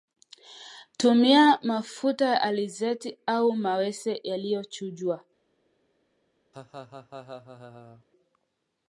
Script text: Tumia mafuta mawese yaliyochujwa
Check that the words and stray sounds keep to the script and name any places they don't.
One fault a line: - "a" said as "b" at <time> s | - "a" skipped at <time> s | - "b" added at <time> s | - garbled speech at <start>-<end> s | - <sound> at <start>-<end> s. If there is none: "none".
- "ya alizeti au" added at 2.2 s
- laugh at 6.5-8.1 s